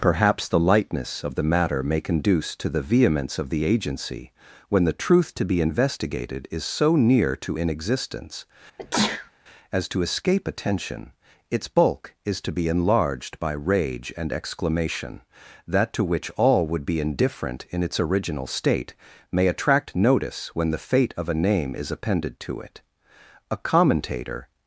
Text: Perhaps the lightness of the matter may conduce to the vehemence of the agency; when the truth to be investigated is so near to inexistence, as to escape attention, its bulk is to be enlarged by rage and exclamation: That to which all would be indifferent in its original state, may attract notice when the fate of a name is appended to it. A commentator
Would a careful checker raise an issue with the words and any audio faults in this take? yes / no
yes